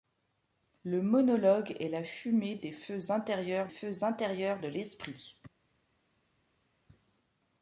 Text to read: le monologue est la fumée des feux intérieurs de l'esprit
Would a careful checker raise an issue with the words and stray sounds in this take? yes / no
yes